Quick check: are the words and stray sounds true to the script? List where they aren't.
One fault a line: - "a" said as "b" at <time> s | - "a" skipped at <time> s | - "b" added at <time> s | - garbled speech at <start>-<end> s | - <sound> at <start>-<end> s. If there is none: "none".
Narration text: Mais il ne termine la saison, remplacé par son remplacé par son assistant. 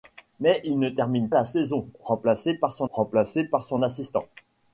none